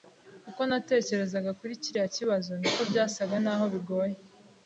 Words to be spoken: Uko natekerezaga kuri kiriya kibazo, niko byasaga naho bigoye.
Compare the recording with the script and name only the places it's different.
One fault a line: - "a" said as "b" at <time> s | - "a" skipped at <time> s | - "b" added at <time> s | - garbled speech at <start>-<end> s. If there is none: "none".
none